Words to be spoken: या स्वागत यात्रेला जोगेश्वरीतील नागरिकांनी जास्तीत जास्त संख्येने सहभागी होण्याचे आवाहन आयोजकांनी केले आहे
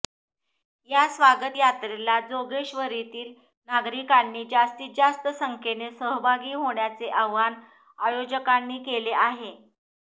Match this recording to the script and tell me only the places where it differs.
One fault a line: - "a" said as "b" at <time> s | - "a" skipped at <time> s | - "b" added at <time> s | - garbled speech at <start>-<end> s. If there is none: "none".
none